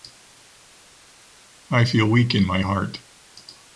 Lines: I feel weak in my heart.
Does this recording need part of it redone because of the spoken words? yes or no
no